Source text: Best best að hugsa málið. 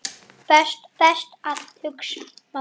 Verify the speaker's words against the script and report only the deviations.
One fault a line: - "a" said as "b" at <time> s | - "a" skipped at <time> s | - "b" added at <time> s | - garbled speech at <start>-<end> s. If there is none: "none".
none